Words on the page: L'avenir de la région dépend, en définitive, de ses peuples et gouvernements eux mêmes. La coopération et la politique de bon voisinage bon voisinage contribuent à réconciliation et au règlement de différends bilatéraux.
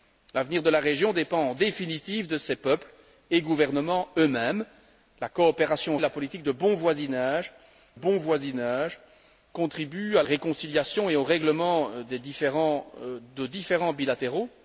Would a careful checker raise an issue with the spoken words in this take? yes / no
no